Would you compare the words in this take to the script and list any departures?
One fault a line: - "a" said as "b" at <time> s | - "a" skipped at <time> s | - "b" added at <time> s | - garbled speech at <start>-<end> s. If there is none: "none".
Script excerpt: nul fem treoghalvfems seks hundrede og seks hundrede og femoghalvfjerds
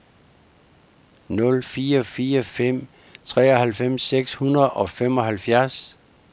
- "fire fire" added at 1.6 s
- "seks hundrede og" skipped at 4.9 s